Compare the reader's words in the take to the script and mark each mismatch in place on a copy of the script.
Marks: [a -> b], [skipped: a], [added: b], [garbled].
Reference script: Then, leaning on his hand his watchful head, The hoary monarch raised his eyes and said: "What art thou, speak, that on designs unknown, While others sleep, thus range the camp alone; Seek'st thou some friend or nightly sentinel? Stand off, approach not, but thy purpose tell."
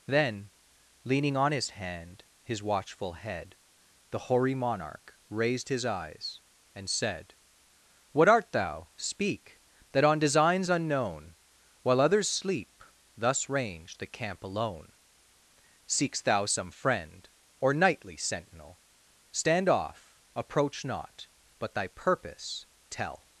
Then, leaning on his hand his watchful head, The hoary monarch raised his eyes and said: "What art thou, speak, that on designs unknown, While others sleep, thus range the camp alone; Seek'st thou some friend or nightly sentinel? Stand off, approach not, but thy purpose tell."